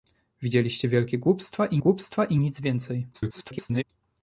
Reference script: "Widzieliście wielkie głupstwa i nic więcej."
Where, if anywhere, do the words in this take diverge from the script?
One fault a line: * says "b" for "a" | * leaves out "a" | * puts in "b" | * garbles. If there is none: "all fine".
* puts in "głupstwa i"
* garbles